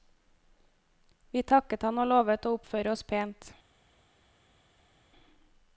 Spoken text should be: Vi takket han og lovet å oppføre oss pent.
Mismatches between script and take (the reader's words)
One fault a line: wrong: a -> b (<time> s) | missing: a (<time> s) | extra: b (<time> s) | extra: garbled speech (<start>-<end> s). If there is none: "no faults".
no faults